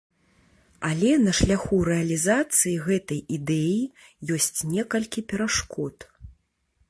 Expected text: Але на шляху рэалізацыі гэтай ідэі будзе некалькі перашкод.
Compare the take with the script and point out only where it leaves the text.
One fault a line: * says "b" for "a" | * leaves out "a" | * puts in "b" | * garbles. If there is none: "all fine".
* says "ёсць" for "будзе"